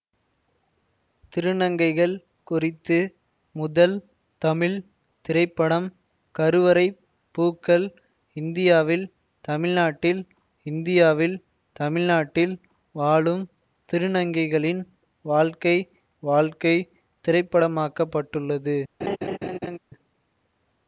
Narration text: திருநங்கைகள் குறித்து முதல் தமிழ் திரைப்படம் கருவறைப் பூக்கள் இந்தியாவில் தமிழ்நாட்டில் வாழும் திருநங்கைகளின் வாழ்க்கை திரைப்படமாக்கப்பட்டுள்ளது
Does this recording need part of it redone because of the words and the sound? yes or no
yes